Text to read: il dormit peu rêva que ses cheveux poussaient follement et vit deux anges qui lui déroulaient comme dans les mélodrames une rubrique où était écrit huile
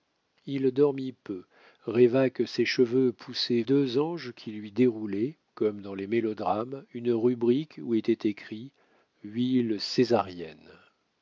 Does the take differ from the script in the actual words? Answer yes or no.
yes